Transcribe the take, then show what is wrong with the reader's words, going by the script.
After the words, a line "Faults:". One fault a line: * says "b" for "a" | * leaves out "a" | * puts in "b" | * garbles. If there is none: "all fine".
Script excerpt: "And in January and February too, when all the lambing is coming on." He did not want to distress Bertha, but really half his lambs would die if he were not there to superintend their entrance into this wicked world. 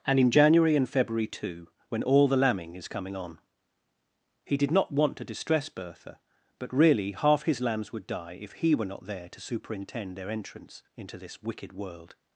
"And in January and February too, when all the lambing is coming on." He did not want to distress Bertha, but really half his lambs would die if he were not there to superintend their entrance into this wicked world.
Faults:
all fine